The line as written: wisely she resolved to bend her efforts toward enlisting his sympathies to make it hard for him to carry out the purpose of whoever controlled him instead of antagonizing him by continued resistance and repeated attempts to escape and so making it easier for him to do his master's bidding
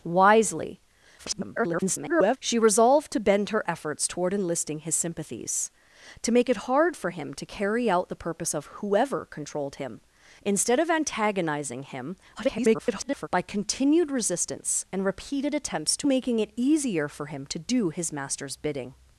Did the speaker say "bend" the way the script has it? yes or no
yes